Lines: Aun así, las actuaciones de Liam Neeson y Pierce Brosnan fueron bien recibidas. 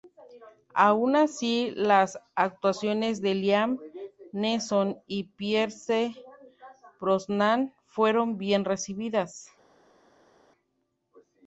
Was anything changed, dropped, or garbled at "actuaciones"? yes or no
no